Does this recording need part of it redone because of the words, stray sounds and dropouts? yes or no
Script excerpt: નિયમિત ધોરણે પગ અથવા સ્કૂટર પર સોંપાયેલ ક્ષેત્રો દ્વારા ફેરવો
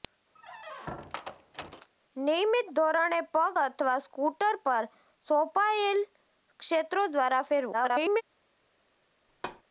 yes